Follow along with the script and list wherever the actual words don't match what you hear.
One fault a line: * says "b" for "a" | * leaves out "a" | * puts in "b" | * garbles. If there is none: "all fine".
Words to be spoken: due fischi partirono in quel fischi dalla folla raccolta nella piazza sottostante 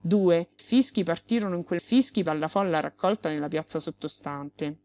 all fine